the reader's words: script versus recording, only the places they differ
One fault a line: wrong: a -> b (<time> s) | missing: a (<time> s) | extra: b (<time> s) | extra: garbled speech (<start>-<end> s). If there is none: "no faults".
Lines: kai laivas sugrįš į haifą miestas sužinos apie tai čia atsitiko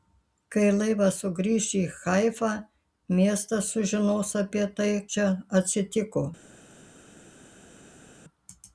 no faults